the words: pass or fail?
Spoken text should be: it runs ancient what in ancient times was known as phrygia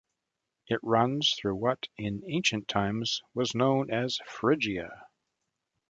fail